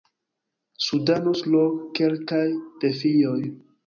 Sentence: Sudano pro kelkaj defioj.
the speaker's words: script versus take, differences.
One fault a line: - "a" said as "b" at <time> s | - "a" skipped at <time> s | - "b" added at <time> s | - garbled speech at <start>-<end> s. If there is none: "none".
none